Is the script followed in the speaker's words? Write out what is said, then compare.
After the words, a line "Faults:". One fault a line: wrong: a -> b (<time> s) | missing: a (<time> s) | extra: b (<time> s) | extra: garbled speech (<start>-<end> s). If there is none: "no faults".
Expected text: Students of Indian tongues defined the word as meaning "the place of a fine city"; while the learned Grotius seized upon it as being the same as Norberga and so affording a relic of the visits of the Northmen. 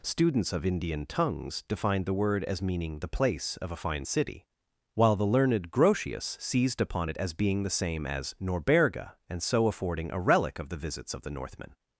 Students of Indian tongues defined the word as meaning "the place of a fine city"; while the learned Grotius seized upon it as being the same as Norberga and so affording a relic of the visits of the Northmen.
Faults:
no faults